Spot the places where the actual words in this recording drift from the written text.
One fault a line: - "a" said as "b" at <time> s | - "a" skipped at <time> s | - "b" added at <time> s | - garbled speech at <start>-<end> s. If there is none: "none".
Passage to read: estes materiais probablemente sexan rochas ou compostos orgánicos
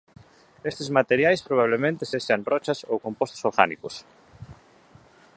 none